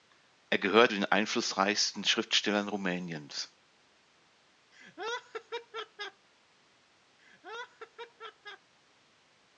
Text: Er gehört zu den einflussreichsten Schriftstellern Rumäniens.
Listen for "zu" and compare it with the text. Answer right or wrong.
wrong